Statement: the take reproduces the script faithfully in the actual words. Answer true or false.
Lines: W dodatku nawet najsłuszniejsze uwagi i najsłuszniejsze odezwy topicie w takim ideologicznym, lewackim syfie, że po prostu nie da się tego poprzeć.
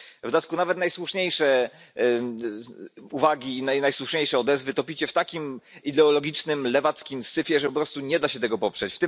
true